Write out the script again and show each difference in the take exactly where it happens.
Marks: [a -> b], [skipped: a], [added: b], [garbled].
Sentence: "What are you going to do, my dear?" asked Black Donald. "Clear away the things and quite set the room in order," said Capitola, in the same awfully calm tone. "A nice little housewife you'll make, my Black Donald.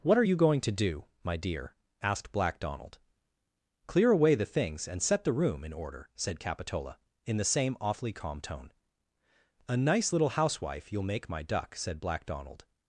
"What are you going to do, my dear?" asked Black Donald. "Clear away the things and [skipped: quite] set the room in order," said Capitola, in the same awfully calm tone. "A nice little housewife you'll make, my [added: duck said] Black Donald.